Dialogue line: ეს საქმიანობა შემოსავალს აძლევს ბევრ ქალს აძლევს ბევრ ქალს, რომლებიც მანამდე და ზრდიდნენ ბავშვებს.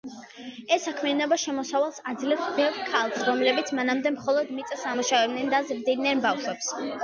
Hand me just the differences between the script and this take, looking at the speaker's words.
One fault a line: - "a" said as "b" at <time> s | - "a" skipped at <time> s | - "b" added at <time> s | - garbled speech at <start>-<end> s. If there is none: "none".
- "აძლევს ბევრ ქალს რომლებიც მანამდე" said as "რომლებიც მანამდე მხოლოდ მიწას ამუშავებდნენ" at 3.3 s